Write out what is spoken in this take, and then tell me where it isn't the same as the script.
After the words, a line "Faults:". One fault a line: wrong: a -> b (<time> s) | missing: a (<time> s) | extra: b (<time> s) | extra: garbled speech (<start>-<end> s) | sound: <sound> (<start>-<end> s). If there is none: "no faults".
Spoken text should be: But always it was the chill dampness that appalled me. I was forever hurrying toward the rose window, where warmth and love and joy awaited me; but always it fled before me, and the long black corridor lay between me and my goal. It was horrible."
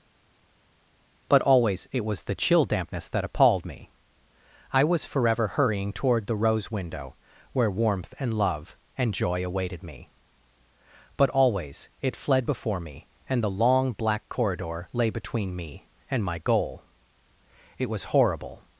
But always it was the chill dampness that appalled me. I was forever hurrying toward the rose window, where warmth and love and joy awaited me; but always it fled before me, and the long black corridor lay between me and my goal. It was horrible."
Faults:
no faults